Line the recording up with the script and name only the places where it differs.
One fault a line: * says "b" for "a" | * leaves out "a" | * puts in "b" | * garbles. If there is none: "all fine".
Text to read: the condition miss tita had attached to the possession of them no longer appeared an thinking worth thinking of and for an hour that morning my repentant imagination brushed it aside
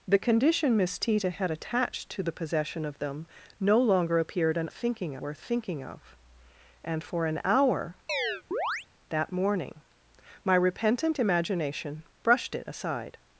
all fine